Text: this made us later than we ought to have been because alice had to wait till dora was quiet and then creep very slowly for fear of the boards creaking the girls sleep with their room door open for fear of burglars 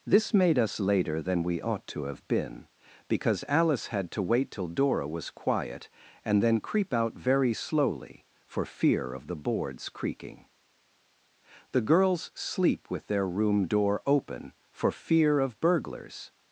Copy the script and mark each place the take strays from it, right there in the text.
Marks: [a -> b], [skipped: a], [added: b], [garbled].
this made us later than we ought to have been because alice had to wait till dora was quiet and then creep [added: out] very slowly for fear of the boards creaking the girls sleep with their room door open for fear of burglars